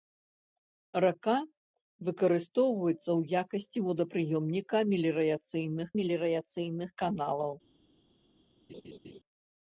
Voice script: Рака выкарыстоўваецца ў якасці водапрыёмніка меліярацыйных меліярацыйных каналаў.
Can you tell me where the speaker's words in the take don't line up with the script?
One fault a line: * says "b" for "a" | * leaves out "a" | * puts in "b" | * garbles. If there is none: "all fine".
all fine